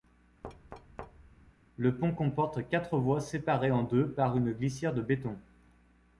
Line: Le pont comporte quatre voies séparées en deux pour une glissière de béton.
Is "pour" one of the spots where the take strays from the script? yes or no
yes